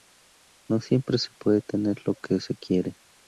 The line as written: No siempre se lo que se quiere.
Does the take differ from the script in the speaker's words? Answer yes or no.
yes